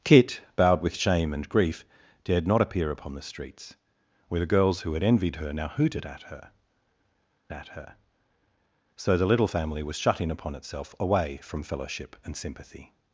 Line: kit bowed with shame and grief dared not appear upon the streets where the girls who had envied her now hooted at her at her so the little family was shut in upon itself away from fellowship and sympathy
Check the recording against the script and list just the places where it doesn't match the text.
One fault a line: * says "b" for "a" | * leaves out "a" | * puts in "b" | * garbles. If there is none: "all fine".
all fine